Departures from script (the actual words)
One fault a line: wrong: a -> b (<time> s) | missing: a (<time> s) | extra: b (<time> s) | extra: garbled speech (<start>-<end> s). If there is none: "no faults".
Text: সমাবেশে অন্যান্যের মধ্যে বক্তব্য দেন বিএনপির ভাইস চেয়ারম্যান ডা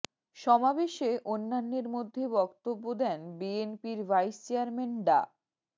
no faults